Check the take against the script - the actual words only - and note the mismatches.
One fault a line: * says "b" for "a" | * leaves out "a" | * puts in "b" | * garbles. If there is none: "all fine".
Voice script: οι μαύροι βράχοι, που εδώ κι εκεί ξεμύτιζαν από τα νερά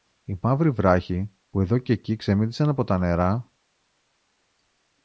all fine